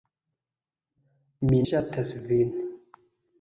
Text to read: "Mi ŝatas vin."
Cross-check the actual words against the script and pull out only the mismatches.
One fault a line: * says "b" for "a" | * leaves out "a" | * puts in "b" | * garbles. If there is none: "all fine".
all fine